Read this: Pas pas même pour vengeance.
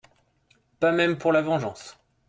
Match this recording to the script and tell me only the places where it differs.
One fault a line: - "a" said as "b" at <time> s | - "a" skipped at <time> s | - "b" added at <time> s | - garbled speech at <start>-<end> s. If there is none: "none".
- "pas" skipped at 0.9 s
- "la" added at 1.3 s